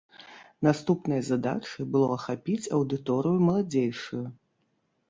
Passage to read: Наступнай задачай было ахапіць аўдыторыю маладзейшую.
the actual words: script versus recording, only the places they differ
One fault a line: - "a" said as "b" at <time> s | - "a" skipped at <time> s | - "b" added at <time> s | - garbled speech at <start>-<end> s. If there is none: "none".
none